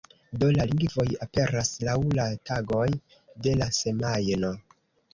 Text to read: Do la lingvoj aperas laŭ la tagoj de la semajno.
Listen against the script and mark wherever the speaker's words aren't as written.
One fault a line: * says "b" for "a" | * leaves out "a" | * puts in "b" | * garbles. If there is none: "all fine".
all fine